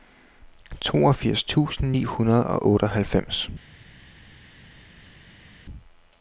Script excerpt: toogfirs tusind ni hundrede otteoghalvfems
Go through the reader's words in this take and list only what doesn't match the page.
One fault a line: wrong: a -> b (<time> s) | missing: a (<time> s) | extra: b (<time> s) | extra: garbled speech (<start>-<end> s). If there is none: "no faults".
extra: og (2.5 s)